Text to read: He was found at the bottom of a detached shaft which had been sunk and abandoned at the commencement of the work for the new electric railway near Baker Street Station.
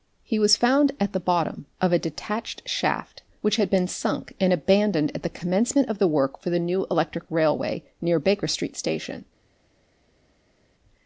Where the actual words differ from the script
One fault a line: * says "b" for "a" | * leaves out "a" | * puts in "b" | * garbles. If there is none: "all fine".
all fine